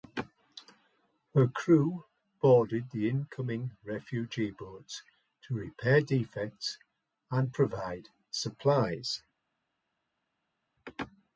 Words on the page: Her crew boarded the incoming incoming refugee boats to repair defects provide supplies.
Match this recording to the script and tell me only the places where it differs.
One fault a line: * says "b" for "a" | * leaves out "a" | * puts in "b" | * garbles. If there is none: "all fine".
* leaves out "incoming"
* puts in "and"